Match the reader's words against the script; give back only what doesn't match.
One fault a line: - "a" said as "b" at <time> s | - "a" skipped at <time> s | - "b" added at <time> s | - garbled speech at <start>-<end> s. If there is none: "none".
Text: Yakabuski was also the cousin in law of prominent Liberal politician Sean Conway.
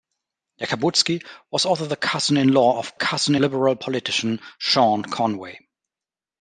- "prominent" said as "cousin" at 2.9 s